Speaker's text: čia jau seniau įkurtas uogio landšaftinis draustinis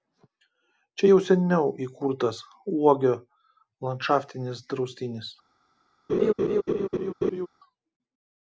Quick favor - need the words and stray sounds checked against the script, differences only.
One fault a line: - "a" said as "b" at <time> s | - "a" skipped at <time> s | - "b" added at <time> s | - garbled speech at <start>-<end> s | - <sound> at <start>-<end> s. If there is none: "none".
- laugh at 6.1-7.5 s